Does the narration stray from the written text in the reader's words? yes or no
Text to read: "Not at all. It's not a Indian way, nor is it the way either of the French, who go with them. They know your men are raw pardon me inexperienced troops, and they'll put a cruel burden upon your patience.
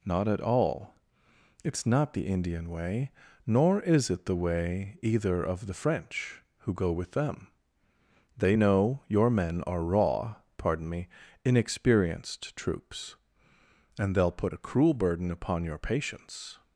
yes